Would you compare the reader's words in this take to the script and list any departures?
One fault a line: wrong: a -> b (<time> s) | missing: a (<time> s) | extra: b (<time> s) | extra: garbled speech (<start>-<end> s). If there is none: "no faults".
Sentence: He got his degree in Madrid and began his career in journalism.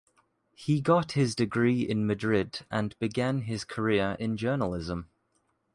no faults